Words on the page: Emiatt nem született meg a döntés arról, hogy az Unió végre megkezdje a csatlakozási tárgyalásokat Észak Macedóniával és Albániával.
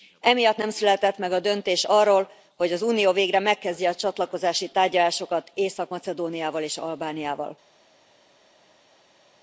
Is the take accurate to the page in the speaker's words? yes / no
yes